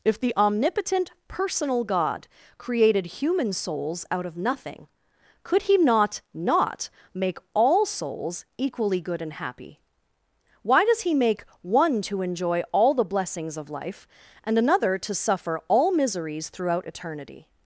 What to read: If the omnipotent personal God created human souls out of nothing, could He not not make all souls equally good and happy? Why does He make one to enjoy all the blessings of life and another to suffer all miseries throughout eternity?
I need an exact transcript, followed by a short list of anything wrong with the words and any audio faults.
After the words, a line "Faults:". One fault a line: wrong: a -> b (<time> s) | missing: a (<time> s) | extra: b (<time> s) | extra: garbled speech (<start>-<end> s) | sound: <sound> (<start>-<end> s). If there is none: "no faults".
If the omnipotent personal God created human souls out of nothing, could He not not make all souls equally good and happy? Why does He make one to enjoy all the blessings of life and another to suffer all miseries throughout eternity?
Faults:
no faults